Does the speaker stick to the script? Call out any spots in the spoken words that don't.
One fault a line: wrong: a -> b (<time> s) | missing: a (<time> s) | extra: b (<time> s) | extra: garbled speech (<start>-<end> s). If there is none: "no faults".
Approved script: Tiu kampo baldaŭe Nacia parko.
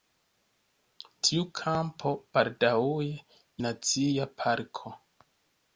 no faults